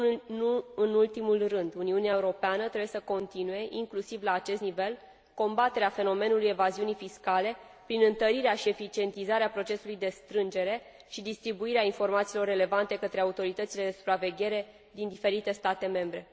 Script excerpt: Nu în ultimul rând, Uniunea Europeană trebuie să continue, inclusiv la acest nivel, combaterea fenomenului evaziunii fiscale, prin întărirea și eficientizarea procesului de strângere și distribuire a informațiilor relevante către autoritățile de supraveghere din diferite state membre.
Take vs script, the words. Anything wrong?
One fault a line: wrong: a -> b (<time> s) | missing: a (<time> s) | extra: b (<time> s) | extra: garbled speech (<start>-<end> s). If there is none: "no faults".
no faults